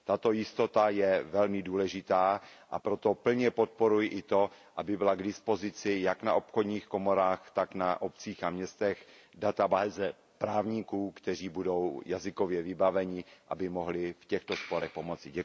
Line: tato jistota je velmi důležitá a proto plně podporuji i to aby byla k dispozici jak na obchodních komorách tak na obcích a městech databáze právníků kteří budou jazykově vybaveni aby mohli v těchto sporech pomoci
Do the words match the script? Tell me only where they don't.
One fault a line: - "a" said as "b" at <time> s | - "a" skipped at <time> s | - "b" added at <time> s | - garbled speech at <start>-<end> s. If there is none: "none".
none